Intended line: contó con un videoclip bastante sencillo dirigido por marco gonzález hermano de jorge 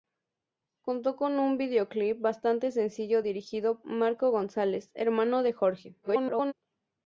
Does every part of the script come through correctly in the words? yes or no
no